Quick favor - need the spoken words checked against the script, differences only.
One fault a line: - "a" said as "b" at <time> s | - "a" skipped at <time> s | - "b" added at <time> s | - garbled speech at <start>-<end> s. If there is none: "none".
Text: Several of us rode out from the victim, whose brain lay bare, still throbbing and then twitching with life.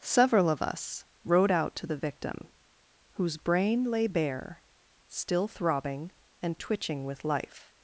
- "from" said as "to" at 1.8 s
- "then" skipped at 6.6 s